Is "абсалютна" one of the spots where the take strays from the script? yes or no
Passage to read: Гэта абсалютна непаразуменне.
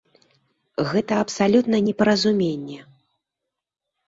no